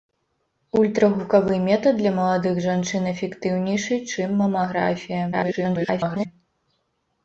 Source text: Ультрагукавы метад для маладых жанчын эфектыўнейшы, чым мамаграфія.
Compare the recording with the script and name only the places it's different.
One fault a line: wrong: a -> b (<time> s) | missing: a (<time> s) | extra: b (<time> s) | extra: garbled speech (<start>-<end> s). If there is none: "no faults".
extra: garbled speech (5.3-6.3 s)